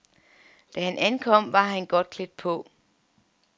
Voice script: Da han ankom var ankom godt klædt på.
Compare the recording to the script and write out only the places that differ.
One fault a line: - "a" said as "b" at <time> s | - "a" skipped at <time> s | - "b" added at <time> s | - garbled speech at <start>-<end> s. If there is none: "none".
- "ankom" said as "han" at 1.6 s